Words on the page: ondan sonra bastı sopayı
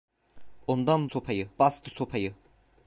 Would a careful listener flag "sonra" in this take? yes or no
yes